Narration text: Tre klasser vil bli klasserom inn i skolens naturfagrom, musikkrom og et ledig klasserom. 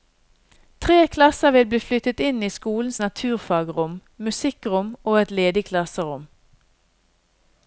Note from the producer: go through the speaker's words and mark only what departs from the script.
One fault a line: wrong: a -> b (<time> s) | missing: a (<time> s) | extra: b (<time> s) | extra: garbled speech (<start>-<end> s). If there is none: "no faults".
wrong: klasserom -> flyttet (1.8 s)